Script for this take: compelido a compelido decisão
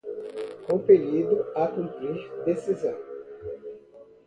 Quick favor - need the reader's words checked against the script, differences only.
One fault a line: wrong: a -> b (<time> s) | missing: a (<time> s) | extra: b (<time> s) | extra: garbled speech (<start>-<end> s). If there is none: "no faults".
wrong: compelido -> cumprir (1.7 s)